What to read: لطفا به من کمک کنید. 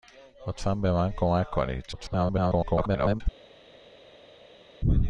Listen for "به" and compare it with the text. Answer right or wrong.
right